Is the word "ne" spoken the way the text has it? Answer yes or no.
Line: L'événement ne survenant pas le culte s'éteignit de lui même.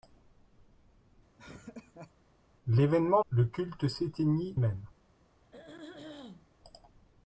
no